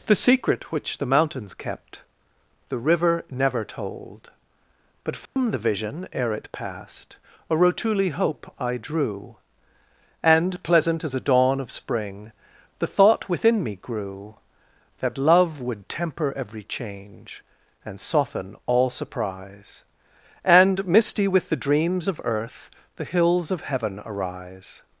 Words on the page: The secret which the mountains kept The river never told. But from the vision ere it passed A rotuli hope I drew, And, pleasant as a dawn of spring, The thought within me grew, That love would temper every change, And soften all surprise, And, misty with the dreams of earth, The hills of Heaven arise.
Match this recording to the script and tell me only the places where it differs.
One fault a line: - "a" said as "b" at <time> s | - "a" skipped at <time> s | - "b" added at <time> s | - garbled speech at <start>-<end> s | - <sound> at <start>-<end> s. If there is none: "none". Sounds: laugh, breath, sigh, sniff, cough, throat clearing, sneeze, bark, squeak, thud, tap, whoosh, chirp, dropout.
- dropout at 5.3-5.4 s